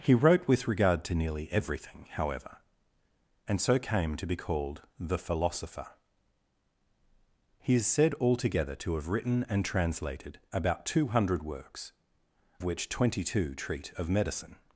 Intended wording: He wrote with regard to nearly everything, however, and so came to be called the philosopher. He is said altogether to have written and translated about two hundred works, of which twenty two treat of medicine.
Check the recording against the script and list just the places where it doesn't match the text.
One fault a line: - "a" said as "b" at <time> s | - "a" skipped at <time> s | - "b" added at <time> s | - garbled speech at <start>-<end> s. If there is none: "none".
- "of" skipped at 11.9 s